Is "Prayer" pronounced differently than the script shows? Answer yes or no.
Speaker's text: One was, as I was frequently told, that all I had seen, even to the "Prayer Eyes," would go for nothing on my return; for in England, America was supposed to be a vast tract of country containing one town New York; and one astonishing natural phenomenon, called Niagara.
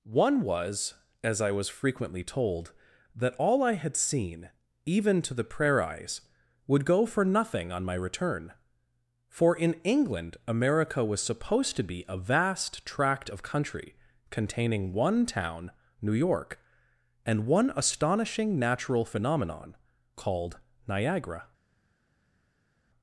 no